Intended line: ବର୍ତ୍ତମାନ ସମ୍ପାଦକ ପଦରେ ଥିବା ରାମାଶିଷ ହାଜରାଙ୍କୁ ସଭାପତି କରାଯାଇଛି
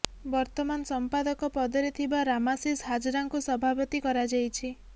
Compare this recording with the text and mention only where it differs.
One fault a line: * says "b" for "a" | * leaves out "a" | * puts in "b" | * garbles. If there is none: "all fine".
all fine